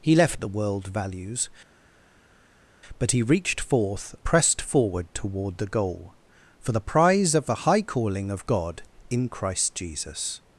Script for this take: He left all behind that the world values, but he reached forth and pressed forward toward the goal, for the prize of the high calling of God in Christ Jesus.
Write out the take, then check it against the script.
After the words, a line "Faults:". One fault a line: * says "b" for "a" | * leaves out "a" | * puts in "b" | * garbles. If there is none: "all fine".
He left the world values, but he reached forth pressed forward toward the goal, for the prize of the high calling of God in Christ Jesus.
Faults:
* leaves out "all behind that"
* leaves out "and"